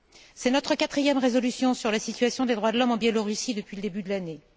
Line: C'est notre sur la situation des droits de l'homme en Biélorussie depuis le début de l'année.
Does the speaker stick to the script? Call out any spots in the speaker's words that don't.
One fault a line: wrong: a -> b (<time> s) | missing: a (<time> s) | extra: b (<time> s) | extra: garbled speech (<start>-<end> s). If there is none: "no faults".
extra: quatrième résolution (0.8 s)